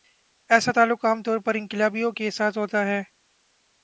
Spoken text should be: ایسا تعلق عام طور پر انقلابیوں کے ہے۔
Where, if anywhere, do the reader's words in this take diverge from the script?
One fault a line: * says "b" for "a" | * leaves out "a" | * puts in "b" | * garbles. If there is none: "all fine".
* puts in "ساتھ ہوتا"